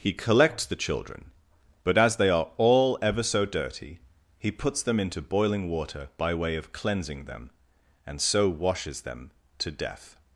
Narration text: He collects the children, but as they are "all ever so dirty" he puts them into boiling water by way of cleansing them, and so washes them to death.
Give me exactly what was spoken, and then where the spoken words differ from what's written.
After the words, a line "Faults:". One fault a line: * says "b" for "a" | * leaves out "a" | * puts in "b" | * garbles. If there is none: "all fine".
He collects the children, but as they are "all ever so dirty" he puts them into boiling water by way of cleansing them, and so washes them to death.
Faults:
all fine